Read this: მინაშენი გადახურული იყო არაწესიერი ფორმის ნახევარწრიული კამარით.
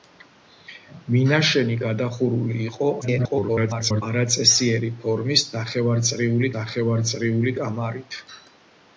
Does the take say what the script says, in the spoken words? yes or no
no